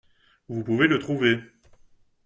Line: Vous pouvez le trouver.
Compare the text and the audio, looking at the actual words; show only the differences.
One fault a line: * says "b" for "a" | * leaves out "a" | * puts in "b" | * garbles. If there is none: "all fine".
all fine